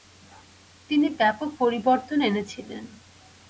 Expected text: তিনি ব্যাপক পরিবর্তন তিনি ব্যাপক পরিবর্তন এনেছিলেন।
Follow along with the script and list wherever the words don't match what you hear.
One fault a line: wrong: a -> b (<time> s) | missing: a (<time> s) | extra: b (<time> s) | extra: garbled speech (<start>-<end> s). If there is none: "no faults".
missing: তিনি ব্যাপক পরিবর্তন (2.2 s)